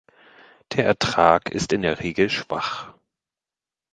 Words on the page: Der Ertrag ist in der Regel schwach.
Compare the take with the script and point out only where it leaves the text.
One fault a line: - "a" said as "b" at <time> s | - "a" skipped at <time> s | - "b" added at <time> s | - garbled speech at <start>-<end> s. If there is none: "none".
none